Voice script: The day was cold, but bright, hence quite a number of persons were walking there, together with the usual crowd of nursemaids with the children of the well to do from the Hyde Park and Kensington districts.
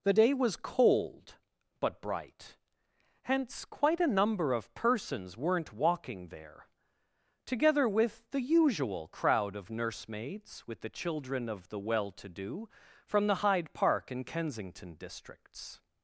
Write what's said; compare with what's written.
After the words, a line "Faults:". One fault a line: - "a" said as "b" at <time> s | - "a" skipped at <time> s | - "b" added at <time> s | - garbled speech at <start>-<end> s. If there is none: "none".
The day was cold, but bright, hence quite a number of persons weren't walking there, together with the usual crowd of nursemaids with the children of the well to do from the Hyde Park and Kensington districts.
Faults:
- "were" said as "weren't" at 5.3 s